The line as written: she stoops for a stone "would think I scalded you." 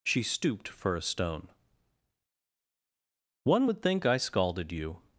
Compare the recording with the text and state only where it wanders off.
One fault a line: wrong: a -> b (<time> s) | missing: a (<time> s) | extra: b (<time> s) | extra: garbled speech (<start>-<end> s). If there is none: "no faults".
wrong: stoops -> stooped (0.2 s)
extra: one (3.4 s)